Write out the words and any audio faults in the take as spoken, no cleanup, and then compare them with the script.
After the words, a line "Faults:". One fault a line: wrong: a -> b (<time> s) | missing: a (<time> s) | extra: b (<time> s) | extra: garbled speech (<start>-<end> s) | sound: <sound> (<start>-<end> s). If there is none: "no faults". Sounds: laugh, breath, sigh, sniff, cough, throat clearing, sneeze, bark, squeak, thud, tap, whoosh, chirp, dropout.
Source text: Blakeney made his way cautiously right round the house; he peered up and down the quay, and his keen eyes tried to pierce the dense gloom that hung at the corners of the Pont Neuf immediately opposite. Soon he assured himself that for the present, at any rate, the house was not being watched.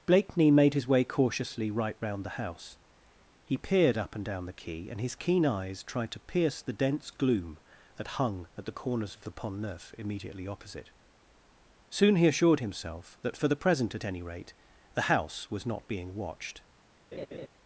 Blakeney made his way cautiously right round the house; he peered up and down the quay, and his keen eyes tried to pierce the dense gloom that hung at the corners of the Pont Neuf immediately opposite. Soon he assured himself that for the present, at any rate, the house was not being watched.
Faults:
sound: laugh (17.1-17.5 s)